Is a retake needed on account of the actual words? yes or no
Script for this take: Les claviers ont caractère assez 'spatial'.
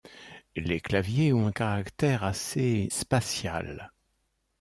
no